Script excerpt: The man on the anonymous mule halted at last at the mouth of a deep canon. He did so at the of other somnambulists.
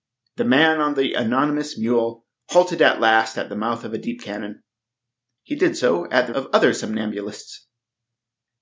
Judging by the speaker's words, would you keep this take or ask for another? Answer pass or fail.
pass